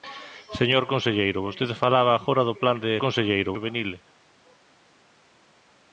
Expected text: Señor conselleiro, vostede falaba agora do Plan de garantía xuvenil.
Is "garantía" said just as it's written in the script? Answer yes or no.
no